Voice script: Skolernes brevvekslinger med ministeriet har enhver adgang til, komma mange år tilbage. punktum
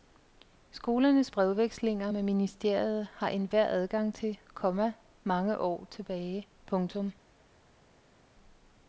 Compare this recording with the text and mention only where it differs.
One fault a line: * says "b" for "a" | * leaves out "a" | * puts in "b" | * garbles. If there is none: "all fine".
all fine